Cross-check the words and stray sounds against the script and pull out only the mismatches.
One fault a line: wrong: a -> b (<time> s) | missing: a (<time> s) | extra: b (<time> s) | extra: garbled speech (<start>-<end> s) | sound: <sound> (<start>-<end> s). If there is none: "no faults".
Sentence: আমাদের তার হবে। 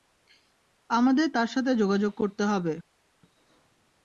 extra: সাথে যোগাযোগ করতে (1.5 s)